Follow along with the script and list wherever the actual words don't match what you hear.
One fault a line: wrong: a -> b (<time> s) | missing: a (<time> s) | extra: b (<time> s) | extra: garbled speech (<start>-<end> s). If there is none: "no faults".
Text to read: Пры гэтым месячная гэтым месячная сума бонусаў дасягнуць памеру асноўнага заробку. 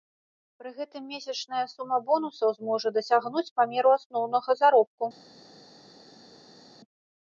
missing: гэтым месячная (1.6 s)
extra: зможа (2.6 s)